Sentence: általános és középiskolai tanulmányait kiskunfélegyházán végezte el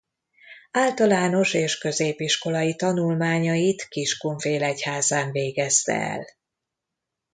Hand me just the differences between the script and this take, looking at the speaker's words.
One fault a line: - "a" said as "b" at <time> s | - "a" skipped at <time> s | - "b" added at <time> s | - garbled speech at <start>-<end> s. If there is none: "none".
none